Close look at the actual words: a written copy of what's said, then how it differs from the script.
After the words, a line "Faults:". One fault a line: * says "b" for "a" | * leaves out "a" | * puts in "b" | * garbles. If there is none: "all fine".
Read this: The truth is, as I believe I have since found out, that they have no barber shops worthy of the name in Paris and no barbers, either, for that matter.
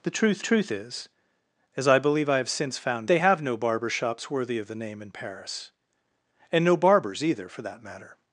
The truth truth is, as I believe I have since found they have no barber shops worthy of the name in Paris and no barbers, either, for that matter.
Faults:
* puts in "truth"
* leaves out "out that"